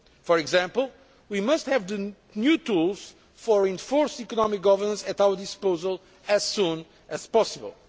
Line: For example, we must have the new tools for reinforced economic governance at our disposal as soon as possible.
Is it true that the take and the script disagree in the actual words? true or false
false